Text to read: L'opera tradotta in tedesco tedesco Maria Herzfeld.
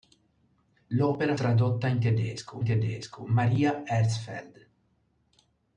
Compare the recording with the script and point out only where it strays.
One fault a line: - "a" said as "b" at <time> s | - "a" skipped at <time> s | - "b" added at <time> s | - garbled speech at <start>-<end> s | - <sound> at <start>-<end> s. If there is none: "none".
none